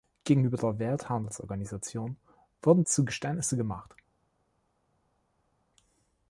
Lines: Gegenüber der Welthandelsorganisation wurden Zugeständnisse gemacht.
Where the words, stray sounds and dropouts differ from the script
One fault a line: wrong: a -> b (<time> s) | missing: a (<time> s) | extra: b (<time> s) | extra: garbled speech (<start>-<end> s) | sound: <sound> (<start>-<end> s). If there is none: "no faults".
no faults